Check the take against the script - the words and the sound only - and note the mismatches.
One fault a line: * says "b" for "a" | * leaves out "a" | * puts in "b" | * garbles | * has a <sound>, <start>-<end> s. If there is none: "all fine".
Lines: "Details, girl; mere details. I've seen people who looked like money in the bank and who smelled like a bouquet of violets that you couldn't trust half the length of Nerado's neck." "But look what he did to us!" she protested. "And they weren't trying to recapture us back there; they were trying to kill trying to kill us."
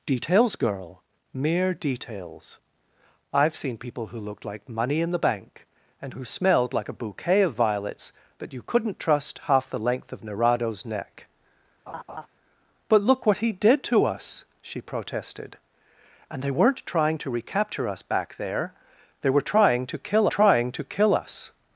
* has a laugh, 11.9-12.3 s